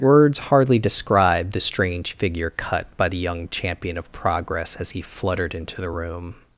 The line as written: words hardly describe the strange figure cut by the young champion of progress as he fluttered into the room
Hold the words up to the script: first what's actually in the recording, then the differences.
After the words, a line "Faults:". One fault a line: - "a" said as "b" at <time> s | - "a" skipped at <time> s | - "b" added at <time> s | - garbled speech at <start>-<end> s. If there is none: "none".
words hardly describe the strange figure cut by the young champion of progress as he fluttered into the room
Faults:
none